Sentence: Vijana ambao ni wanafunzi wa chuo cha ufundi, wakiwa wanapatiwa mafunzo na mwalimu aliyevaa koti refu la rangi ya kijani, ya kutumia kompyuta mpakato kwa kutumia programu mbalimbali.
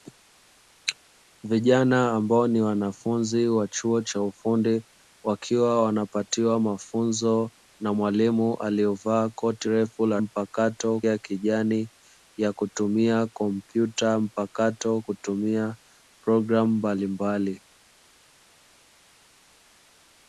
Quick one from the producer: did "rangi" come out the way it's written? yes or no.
no